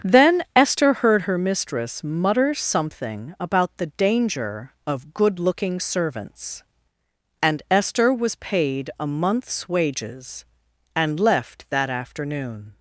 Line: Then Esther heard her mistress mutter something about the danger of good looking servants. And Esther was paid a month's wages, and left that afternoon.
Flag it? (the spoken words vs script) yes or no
no